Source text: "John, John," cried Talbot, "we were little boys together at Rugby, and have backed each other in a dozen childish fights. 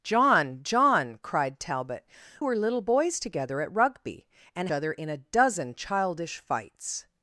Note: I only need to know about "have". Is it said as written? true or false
false